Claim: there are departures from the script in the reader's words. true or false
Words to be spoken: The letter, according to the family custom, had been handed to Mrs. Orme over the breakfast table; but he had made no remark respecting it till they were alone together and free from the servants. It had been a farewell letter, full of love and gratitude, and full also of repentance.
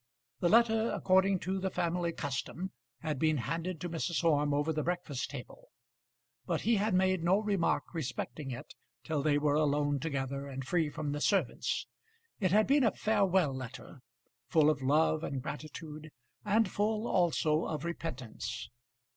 false